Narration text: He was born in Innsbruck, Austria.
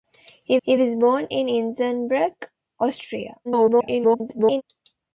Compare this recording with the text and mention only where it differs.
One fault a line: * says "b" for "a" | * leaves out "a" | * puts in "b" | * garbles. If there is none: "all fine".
* puts in "he"
* garbles